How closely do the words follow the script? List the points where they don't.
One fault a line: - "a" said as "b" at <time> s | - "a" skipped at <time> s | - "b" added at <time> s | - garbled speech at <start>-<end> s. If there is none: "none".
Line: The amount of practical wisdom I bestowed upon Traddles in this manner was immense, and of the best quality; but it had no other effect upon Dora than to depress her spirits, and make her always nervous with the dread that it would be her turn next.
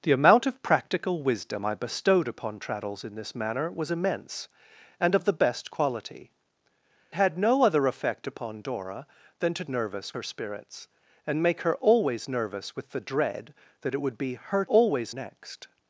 - "but it" skipped at 6.3 s
- "depress" said as "nervous" at 9.7 s
- "turn" said as "always" at 14.6 s